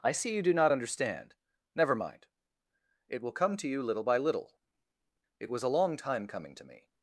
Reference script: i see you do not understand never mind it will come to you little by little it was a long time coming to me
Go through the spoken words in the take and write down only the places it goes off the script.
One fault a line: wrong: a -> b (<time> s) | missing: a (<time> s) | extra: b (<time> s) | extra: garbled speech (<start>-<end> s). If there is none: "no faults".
no faults